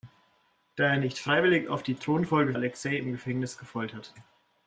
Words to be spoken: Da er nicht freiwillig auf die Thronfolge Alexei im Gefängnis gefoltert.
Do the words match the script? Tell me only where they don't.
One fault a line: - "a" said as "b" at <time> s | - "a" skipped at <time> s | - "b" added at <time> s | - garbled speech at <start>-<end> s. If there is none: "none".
none